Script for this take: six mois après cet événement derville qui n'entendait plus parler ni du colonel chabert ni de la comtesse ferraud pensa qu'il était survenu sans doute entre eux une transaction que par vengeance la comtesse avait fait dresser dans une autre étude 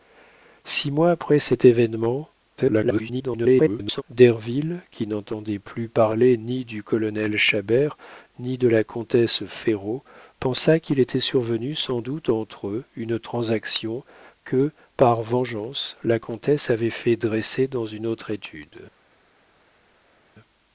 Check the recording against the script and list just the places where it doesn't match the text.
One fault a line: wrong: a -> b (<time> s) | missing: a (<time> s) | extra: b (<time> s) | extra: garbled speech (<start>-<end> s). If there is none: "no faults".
extra: garbled speech (2.6-4.0 s)